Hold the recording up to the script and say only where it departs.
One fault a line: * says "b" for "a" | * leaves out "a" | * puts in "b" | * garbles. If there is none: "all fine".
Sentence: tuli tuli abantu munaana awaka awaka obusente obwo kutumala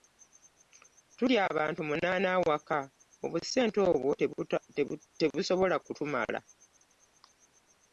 * leaves out "tuli"
* leaves out "awaka"
* puts in "tebusobola"